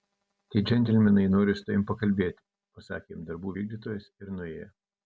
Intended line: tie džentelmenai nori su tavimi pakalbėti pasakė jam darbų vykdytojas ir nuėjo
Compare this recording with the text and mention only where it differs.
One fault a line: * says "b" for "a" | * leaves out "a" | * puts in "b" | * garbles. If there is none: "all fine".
all fine